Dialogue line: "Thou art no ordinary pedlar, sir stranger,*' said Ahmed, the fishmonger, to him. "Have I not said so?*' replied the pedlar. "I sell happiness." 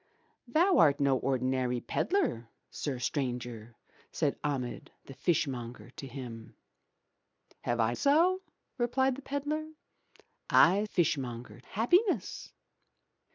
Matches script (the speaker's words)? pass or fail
fail